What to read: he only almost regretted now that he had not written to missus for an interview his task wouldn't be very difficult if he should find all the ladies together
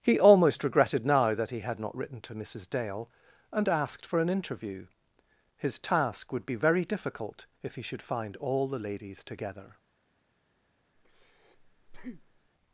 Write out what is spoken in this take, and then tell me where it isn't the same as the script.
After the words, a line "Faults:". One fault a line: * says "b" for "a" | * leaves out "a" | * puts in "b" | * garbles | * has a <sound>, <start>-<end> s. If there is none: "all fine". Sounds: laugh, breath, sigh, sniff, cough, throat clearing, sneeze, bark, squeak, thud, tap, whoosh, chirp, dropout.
he almost regretted now that he had not written to missus dale and asked for an interview his task would be very difficult if he should find all the ladies together
Faults:
* leaves out "only"
* puts in "dale and asked"
* says "would" for "wouldn't"
* has a breath, 10.9-12.5 s